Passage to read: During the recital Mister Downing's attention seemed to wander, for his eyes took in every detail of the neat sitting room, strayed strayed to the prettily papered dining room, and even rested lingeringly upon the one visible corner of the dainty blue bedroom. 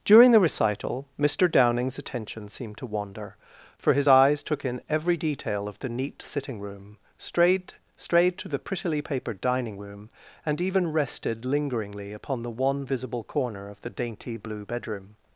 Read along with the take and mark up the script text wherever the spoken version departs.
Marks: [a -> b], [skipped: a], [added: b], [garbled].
During the recital Mister Downing's attention seemed to wander, for his eyes took in every detail of the neat sitting room, strayed strayed to the prettily papered dining room, and even rested lingeringly upon the one visible corner of the dainty blue bedroom.